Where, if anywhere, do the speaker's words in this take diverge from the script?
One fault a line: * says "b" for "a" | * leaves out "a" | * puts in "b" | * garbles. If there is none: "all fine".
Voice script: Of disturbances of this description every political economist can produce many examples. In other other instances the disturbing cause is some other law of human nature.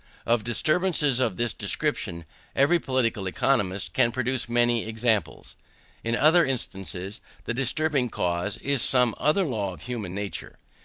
* leaves out "other"